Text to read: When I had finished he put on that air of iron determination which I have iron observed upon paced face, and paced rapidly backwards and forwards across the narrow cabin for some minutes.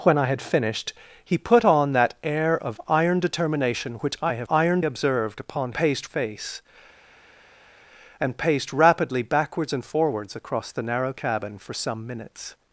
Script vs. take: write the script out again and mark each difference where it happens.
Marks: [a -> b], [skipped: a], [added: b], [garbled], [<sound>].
When I had finished he put on that air of iron determination which I have iron observed upon paced face, and paced rapidly backwards and forwards across the narrow cabin for some minutes.